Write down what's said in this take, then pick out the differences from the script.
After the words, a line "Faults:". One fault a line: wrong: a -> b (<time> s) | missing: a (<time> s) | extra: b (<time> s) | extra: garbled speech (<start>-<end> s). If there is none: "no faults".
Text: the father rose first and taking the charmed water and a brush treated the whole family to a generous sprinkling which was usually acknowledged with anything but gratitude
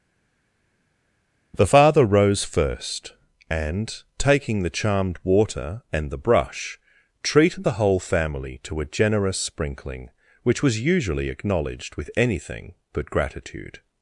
the father rose first and taking the charmed water and the brush treated the whole family to a generous sprinkling which was usually acknowledged with anything but gratitude
Faults:
wrong: a -> the (6.1 s)